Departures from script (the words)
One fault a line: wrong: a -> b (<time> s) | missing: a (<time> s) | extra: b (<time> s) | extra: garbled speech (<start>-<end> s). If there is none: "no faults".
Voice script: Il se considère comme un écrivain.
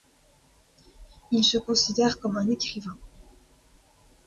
no faults